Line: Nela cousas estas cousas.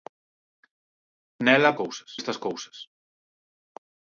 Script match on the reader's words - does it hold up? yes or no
yes